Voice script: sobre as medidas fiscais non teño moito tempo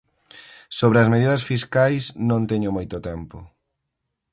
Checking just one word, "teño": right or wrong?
right